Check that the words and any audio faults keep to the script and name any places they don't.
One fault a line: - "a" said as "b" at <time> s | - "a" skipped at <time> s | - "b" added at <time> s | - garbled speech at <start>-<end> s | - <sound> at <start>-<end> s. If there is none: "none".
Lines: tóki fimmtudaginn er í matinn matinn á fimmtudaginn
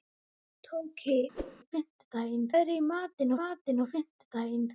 - whoosh at 1.3-1.6 s